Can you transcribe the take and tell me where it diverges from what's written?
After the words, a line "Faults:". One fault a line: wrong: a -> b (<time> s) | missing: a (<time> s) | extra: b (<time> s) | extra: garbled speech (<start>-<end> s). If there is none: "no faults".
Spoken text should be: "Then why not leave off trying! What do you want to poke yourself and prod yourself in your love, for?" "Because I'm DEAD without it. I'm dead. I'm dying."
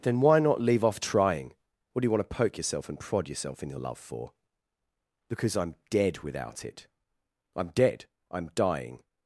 "Then why not leave off trying! What do you want to poke yourself and prod yourself in your love, for?" "Because I'm DEAD without it. I'm dead. I'm dying."
Faults:
no faults